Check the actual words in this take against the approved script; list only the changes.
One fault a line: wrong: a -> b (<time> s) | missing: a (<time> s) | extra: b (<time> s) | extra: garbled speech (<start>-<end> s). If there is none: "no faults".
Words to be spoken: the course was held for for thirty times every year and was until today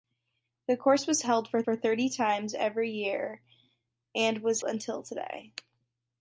no faults